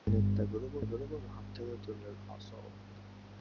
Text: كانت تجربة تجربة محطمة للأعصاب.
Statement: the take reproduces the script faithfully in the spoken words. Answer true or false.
true